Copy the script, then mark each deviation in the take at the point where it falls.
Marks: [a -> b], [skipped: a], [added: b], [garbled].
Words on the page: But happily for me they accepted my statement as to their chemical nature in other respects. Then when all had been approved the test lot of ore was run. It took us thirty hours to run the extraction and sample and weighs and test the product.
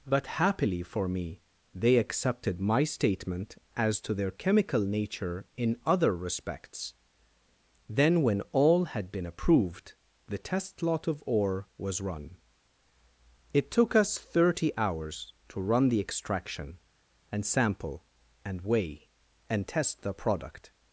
But happily for me they accepted my statement as to their chemical nature in other respects. Then when all had been approved the test lot of ore was run. It took us thirty hours to run the extraction and sample and [weighs -> weigh] and test the product.